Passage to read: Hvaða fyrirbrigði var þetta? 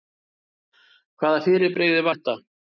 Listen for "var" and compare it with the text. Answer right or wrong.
wrong